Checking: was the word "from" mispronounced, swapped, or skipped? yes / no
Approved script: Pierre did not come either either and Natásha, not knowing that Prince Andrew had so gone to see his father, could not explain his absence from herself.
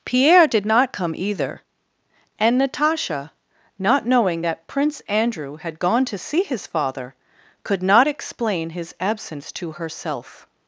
yes